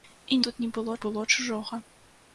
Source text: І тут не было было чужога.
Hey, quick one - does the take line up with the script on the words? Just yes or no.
yes